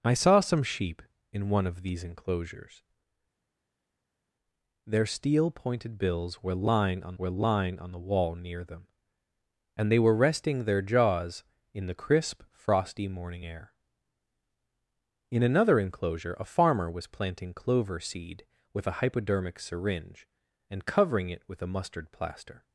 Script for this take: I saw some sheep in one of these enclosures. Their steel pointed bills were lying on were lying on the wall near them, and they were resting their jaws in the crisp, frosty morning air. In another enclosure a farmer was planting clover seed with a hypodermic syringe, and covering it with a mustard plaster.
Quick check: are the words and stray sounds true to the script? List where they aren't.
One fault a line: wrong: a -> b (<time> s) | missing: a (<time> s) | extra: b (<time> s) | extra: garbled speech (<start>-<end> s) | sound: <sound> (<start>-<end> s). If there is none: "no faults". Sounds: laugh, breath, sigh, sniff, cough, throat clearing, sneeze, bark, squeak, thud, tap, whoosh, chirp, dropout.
no faults